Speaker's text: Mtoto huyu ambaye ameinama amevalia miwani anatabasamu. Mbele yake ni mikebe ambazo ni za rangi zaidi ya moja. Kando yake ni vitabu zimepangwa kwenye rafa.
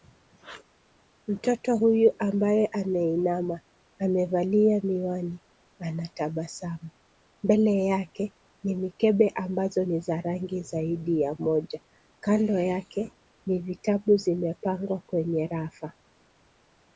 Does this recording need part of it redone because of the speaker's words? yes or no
no